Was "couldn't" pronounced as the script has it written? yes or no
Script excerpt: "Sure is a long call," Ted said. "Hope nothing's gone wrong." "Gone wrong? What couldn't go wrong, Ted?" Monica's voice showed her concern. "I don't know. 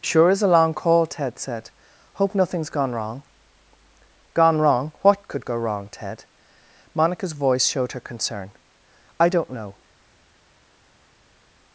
no